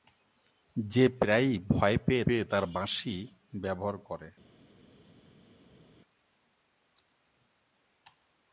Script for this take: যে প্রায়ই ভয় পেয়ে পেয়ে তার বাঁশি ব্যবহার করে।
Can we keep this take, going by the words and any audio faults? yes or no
yes